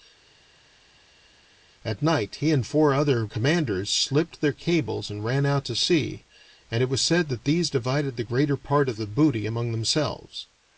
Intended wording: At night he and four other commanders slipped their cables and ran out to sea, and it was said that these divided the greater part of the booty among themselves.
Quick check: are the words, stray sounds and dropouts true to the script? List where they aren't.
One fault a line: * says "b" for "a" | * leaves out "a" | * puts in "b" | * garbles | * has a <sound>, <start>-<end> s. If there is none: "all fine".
all fine